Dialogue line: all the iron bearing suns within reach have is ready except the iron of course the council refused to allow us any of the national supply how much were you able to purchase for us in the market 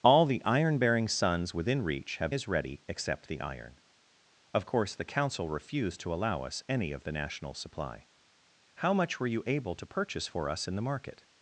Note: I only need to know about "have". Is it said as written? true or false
true